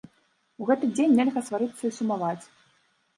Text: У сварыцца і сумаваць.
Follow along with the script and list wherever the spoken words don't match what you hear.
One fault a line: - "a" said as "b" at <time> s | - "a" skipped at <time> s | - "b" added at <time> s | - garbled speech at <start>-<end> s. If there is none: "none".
- "гэты дзень нельга" added at 0.7 s